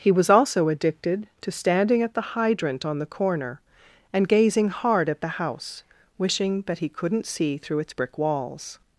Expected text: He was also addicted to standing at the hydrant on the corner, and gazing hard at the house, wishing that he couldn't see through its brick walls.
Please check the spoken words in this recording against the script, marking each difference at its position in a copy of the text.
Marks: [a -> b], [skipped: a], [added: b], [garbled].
He was also addicted to standing at the hydrant on the corner, and gazing hard at the house, wishing that he couldn't see through its brick walls.